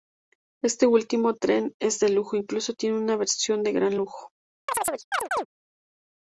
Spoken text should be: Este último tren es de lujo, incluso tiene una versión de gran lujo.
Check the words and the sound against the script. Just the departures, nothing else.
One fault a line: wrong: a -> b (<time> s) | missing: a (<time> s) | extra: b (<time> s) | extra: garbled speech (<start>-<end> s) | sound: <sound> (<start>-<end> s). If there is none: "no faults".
sound: chirp (4.7-5.5 s)